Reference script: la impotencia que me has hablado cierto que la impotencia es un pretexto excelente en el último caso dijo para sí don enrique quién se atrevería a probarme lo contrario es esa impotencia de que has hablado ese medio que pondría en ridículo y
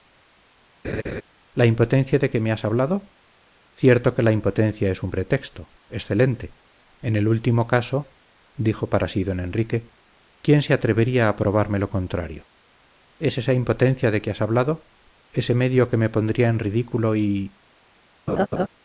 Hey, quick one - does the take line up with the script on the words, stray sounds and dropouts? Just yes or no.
no